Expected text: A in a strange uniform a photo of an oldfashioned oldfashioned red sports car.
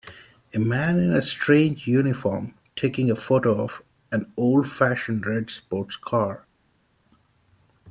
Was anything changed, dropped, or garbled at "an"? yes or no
no